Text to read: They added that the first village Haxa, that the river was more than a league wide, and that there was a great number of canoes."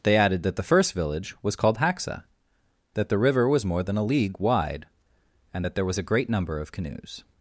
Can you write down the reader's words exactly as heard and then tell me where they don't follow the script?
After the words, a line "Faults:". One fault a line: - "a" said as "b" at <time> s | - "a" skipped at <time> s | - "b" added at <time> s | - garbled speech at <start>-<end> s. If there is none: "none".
They added that the first village was called Haxa, that the river was more than a league wide, and that there was a great number of canoes."
Faults:
- "was called" added at 1.4 s